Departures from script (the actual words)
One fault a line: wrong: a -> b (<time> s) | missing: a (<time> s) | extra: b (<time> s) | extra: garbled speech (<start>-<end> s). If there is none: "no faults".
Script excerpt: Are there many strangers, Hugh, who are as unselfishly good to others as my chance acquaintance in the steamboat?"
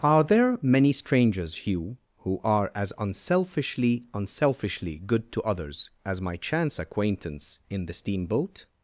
extra: unselfishly (4.1 s)